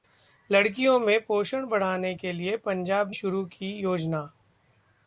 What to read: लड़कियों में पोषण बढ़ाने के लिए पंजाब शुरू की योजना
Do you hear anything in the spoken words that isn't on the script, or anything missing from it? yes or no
no